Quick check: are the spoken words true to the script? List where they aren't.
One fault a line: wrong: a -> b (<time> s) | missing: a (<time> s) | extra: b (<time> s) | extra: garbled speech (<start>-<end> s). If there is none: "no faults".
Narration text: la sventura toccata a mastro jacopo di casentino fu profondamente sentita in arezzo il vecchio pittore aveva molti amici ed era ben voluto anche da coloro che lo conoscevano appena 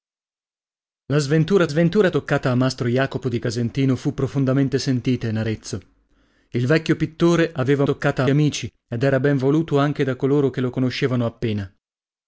extra: sventura (1.7 s)
wrong: molti -> toccata (7.8 s)